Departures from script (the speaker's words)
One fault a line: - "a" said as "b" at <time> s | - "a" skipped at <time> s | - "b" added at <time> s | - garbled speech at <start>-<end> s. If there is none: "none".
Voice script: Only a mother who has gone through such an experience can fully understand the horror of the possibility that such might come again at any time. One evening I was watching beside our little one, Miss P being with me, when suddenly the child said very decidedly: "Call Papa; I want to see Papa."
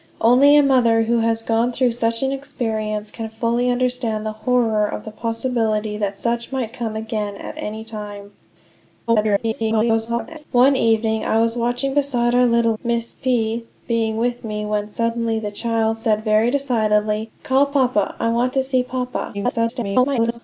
- garbled speech at 9.1-10.4 s
- "one" skipped at 12.7 s
- garbled speech at 19.3-20.4 s